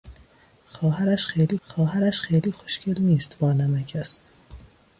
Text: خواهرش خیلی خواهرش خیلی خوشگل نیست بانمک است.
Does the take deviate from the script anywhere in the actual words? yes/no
no